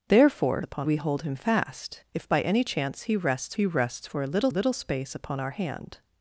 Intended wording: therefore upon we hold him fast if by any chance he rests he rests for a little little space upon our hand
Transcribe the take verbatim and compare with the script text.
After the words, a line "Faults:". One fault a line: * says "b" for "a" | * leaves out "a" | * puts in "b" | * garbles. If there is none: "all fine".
therefore upon we hold him fast if by any chance he rests he rests for a little little space upon our hand
Faults:
all fine